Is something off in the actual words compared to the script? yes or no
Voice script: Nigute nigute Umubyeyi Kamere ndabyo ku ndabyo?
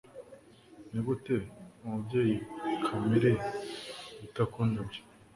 yes